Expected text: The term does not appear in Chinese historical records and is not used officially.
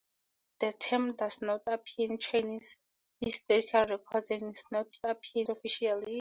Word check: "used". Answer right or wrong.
wrong